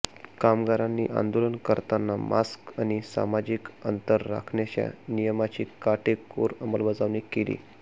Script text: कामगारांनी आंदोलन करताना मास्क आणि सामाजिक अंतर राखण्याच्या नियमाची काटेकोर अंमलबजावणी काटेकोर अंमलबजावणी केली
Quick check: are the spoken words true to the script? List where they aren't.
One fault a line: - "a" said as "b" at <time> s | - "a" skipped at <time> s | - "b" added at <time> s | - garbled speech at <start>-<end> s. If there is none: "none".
- "काटेकोर अंमलबजावणी" skipped at 7.2 s